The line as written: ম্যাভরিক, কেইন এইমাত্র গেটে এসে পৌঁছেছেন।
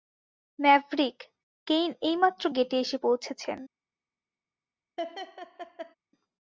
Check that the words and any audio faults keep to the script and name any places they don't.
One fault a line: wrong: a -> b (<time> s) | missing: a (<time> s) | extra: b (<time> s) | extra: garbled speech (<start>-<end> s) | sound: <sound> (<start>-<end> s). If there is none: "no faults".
sound: laugh (5.0-5.9 s)